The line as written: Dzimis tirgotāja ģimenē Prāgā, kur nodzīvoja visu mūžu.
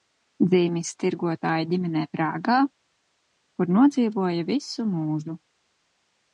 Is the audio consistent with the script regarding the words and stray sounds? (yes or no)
yes